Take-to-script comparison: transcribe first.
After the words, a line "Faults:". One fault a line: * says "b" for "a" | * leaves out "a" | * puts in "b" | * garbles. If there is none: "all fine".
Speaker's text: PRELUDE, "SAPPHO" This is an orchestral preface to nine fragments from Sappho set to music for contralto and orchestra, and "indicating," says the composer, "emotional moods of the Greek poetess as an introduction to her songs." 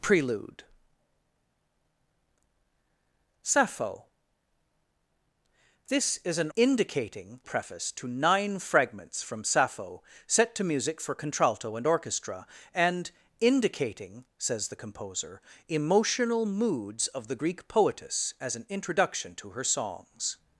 PRELUDE, "SAPPHO" This is an indicating preface to nine fragments from Sappho set to music for contralto and orchestra, and "indicating," says the composer, "emotional moods of the Greek poetess as an introduction to her songs."
Faults:
* says "indicating" for "orchestral"